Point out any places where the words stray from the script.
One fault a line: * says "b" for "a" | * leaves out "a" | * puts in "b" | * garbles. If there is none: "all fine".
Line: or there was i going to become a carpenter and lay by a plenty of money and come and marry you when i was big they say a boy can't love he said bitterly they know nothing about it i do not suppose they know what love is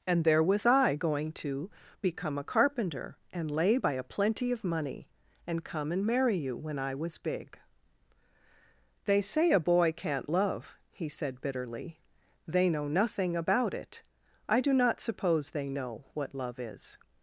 * says "and" for "or"